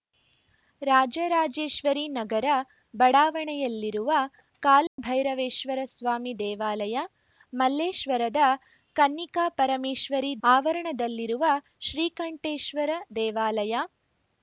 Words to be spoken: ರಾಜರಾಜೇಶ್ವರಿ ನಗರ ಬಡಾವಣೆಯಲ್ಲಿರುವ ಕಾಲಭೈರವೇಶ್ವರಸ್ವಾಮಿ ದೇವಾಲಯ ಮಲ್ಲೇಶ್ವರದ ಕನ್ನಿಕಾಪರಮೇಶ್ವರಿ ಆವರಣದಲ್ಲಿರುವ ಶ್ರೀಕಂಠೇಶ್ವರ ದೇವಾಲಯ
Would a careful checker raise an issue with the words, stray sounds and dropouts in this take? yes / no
yes